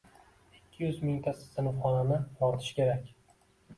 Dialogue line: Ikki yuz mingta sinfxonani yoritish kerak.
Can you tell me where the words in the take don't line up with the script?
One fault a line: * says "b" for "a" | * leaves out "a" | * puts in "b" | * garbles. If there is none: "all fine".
all fine